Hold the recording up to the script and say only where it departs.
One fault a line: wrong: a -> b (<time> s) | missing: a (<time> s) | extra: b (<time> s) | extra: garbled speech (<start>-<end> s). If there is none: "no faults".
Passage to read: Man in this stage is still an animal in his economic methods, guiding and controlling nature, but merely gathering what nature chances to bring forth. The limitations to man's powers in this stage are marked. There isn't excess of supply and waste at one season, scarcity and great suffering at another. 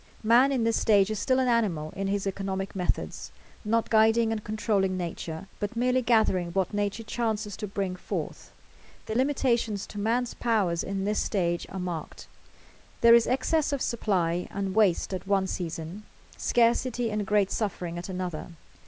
extra: not (3.6 s)
wrong: isn't -> is (13.1 s)